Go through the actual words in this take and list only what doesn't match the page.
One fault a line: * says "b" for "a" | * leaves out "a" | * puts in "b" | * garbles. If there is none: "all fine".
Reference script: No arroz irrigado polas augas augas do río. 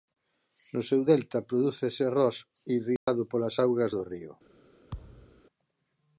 * puts in "seu delta prodúcese"
* leaves out "augas"